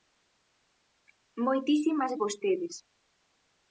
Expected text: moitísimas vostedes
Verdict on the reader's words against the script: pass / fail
pass